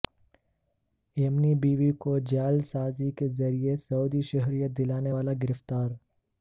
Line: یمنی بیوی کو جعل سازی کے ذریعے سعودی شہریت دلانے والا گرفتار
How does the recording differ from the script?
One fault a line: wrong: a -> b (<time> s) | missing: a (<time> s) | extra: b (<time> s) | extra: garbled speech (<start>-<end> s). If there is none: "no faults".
no faults